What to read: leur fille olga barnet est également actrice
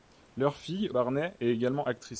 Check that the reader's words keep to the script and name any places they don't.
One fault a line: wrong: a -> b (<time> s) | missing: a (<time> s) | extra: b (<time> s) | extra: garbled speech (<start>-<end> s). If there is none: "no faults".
missing: olga (0.9 s)